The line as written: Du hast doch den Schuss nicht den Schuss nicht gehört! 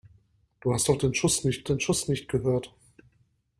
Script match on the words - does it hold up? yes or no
yes